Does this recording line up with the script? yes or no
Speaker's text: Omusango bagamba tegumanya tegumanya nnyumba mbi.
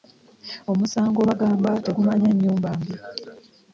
no